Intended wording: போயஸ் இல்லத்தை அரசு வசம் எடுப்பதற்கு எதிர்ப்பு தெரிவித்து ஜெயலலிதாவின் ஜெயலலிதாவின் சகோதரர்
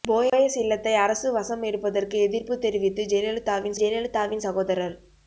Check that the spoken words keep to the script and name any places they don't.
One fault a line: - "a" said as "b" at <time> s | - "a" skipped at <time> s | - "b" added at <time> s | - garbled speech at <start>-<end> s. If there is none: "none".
none